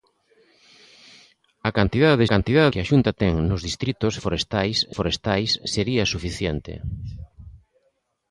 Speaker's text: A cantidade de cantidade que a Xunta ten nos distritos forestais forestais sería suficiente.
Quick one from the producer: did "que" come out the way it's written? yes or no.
yes